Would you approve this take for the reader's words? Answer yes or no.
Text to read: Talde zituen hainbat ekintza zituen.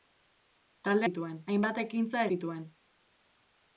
yes